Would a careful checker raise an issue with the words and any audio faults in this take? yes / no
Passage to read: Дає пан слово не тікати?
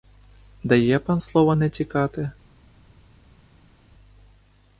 no